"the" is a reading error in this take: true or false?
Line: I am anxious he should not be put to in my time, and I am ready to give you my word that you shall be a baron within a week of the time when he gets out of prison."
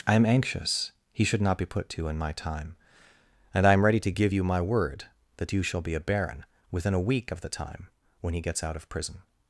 false